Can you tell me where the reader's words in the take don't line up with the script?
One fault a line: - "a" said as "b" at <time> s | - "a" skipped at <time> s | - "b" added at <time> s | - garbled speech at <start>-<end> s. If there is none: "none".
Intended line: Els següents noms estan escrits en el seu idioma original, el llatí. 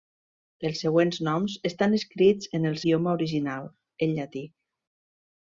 - "seu" skipped at 2.8 s